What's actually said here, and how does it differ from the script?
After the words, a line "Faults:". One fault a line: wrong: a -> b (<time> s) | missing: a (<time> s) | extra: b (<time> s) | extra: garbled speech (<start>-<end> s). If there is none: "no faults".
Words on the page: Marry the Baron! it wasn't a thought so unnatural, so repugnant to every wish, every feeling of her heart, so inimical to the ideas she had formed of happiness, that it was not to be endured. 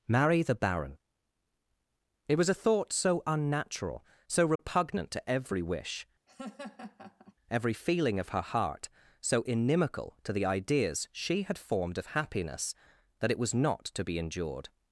Marry the Baron! it was a thought so unnatural, so repugnant to every wish, every feeling of her heart, so inimical to the ideas she had formed of happiness, that it was not to be endured.
Faults:
wrong: wasn't -> was (2.4 s)